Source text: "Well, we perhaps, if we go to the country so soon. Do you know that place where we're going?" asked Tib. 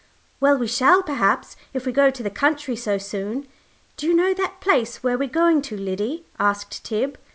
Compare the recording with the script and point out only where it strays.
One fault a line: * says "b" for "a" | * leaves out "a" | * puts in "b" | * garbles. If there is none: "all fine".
* puts in "shall"
* puts in "to Liddy"